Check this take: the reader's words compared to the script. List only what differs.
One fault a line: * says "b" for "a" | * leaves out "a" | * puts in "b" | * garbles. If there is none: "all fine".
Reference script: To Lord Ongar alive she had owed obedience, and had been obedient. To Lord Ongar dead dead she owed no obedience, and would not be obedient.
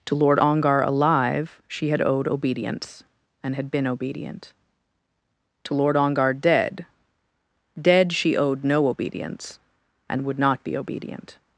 all fine